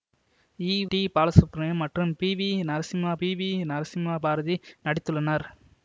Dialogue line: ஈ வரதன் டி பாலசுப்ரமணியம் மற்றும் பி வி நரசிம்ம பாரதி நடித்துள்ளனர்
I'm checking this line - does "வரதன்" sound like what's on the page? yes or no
no